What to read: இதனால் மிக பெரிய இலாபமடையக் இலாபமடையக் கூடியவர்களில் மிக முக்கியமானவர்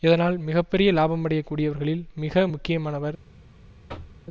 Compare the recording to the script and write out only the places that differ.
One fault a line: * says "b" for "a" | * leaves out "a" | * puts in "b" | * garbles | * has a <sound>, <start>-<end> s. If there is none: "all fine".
* leaves out "இலாபமடையக்"
* has a thud, 3.9-4.2 s